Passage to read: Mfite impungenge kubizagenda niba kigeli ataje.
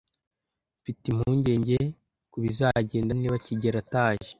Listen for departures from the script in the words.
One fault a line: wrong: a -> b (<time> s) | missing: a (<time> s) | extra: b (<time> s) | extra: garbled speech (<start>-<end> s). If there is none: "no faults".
no faults